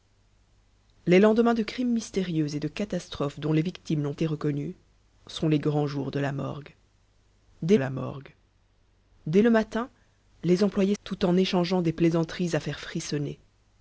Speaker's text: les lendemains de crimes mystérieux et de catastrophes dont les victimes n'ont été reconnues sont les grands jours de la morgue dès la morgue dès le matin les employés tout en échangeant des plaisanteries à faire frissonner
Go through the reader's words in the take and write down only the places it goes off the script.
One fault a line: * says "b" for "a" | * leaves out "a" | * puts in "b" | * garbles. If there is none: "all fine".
all fine